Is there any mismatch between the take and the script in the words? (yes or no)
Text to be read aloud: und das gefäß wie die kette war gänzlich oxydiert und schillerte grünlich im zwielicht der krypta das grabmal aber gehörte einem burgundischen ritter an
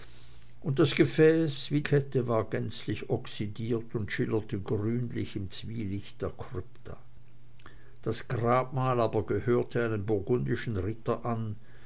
yes